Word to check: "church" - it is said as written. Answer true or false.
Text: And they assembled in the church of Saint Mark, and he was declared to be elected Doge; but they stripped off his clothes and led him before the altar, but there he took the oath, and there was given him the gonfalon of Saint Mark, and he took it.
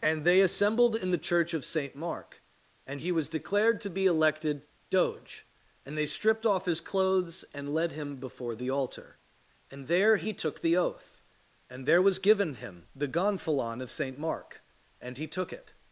true